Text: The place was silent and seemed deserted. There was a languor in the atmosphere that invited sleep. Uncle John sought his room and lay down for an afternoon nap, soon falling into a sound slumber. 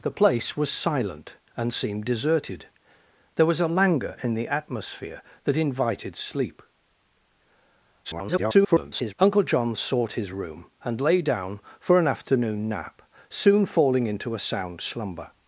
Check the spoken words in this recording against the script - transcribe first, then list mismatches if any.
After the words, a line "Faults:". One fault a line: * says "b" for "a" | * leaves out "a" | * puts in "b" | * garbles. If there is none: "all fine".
The place was silent and seemed deserted. There was a languor in the atmosphere that invited sleep. [garbled] Uncle John sought his room and lay down for an afternoon nap, soon falling into a sound slumber.
Faults:
* garbles